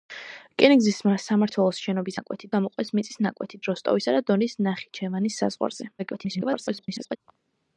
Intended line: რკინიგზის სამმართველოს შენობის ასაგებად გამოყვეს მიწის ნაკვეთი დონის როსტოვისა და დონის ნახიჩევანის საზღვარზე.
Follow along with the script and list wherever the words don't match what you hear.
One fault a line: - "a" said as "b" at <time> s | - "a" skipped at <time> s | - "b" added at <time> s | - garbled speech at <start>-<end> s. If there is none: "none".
- "ასაგებად" said as "ნაკვეთი" at 2.2 s
- "დონის" skipped at 3.6 s
- garbled speech at 6.0-7.2 s